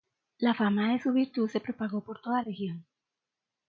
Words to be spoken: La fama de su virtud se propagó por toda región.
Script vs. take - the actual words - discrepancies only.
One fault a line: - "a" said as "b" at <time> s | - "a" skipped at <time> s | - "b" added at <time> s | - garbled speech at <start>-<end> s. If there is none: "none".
none